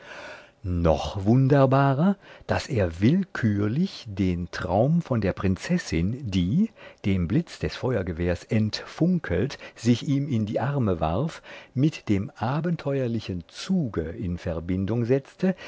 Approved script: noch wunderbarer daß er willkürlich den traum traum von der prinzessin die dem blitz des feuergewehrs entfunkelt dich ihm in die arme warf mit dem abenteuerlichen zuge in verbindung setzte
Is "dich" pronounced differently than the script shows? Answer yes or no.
yes